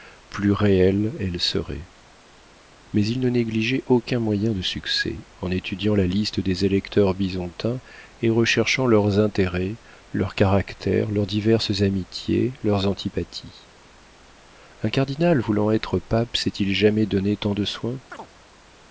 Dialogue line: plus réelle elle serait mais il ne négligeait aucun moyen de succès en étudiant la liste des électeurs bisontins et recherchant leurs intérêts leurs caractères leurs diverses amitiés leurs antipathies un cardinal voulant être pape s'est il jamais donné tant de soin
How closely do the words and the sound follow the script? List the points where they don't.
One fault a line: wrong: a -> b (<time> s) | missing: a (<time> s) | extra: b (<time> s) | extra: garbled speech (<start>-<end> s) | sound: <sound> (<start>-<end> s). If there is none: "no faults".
sound: chirp (18.1-18.3 s)